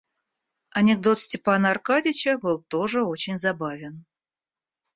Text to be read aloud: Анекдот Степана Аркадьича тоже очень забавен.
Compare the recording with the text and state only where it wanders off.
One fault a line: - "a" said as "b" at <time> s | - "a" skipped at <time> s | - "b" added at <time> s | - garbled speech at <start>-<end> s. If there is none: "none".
- "был" added at 2.4 s